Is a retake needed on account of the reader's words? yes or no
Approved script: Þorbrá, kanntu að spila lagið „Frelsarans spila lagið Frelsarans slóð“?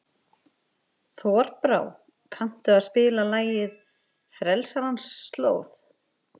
yes